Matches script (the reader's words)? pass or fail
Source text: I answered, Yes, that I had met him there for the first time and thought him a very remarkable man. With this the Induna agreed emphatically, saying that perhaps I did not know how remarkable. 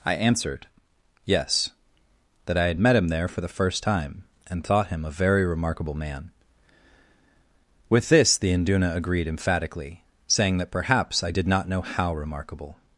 pass